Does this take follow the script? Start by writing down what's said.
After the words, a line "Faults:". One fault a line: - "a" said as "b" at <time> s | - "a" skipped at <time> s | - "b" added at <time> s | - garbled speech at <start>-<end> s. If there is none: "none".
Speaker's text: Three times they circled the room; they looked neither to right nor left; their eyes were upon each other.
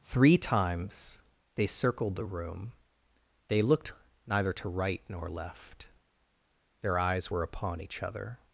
Three times they circled the room; they looked neither to right nor left; their eyes were upon each other.
Faults:
none